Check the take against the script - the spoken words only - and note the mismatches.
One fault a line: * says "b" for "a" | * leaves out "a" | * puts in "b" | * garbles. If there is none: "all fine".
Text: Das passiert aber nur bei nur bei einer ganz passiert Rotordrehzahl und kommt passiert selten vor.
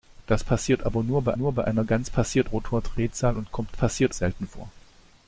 all fine